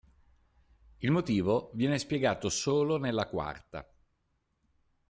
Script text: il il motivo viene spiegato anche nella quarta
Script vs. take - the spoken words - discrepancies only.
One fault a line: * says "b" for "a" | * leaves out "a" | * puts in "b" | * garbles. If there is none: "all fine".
* leaves out "il"
* says "solo" for "anche"